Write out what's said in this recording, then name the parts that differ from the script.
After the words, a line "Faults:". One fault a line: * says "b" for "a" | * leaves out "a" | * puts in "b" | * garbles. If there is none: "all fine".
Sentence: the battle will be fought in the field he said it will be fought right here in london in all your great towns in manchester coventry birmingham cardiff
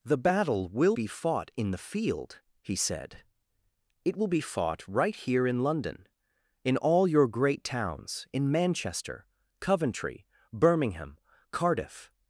the battle will be fought in the field he said it will be fought right here in london in all your great towns in manchester coventry birmingham cardiff
Faults:
all fine